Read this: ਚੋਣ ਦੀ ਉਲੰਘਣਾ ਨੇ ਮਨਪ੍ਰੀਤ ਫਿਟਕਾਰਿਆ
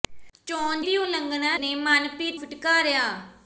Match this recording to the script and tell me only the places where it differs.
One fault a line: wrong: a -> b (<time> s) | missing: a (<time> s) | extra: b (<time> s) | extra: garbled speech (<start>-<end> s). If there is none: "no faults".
no faults